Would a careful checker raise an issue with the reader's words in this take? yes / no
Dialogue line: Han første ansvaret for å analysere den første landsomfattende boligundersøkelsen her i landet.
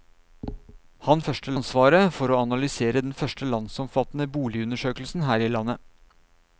no